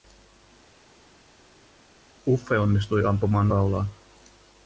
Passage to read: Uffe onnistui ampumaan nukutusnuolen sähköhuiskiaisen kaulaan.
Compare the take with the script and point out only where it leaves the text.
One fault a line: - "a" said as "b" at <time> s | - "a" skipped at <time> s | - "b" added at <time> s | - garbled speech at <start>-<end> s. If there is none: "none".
- "nukutusnuolen sähköhuiskiaisen" skipped at 3.5 s